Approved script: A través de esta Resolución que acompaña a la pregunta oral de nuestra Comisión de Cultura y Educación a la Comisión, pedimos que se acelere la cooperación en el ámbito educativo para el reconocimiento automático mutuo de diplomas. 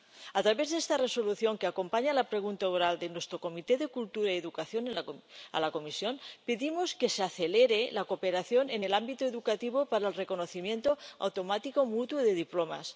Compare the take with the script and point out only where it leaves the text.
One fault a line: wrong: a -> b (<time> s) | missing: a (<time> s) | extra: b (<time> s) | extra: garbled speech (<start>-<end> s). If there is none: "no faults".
no faults